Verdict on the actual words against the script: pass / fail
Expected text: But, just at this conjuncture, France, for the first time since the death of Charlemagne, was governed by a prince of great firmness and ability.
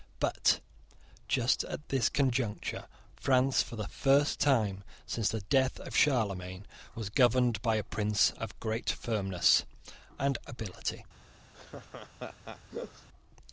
pass